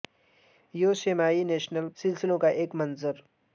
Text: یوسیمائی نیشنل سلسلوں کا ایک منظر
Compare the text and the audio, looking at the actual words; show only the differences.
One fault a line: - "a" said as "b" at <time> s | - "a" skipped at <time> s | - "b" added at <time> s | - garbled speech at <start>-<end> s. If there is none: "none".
none